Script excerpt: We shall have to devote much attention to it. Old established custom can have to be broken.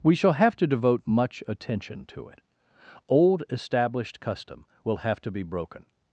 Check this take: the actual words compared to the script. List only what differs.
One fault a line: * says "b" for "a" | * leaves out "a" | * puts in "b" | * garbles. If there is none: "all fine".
* says "will" for "can"